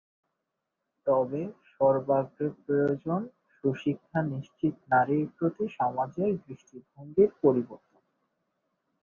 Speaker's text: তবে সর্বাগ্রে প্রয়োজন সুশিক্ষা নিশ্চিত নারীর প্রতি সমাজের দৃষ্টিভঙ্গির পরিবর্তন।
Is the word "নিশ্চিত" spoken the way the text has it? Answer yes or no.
yes